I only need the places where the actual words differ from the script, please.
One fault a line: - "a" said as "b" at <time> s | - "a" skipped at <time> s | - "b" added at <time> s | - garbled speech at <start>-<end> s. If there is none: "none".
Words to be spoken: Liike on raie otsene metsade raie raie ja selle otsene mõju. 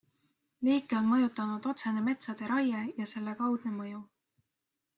- "raie" said as "mõjutanud" at 1.1 s
- "raie" skipped at 2.8 s
- "otsene" said as "kaudne" at 3.4 s